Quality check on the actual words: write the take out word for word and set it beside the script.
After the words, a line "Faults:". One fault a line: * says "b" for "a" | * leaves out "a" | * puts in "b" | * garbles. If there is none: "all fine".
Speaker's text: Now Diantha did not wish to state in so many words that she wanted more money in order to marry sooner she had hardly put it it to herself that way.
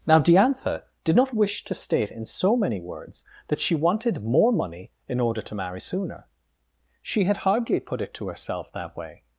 Now Diantha did not wish to state in so many words that she wanted more money in order to marry sooner she had hardly put it to herself that way.
Faults:
* leaves out "it"